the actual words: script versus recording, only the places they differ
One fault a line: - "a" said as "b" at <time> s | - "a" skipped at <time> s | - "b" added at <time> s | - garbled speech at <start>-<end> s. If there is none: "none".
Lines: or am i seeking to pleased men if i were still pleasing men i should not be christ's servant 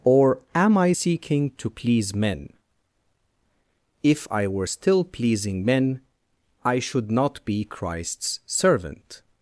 - "pleased" said as "please" at 1.7 s